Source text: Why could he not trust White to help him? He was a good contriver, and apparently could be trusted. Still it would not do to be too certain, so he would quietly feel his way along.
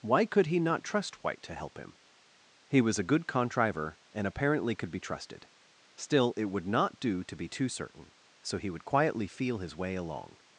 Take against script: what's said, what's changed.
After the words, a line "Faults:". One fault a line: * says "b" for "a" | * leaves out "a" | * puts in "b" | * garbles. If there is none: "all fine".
Why could he not trust White to help him? He was a good contriver, and apparently could be trusted. Still it would not do to be too certain, so he would quietly feel his way along.
Faults:
all fine